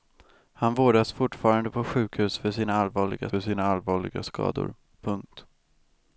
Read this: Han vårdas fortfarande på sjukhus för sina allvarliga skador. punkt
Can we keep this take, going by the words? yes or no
no